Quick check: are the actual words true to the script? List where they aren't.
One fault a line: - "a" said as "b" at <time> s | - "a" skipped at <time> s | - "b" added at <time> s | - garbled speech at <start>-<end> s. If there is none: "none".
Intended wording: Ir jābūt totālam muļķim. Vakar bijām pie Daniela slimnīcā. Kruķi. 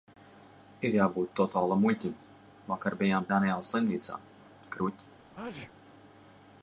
- "pie" skipped at 3.3 s